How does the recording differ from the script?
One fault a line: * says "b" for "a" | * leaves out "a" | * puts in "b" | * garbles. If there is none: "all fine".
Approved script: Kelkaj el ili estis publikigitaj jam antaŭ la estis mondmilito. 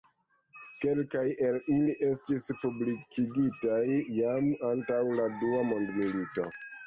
* says "dua" for "estis"